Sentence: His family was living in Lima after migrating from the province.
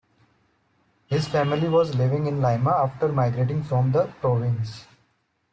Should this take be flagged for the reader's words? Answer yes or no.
no